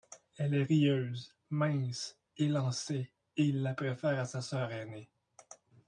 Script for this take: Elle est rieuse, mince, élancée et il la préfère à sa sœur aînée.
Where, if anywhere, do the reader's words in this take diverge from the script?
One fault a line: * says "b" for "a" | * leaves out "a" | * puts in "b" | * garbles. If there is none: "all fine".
all fine